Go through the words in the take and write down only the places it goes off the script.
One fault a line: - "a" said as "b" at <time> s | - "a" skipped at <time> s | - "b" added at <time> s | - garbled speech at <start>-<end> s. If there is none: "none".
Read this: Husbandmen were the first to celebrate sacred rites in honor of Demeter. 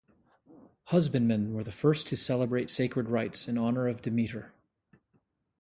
none